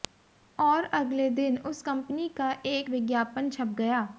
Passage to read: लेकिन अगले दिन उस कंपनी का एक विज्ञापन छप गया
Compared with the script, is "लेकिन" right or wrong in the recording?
wrong